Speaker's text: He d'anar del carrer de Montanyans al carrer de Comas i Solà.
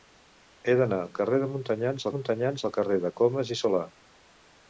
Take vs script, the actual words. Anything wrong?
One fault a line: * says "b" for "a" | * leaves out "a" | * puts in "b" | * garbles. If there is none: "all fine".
* leaves out "del"
* puts in "Montanyans"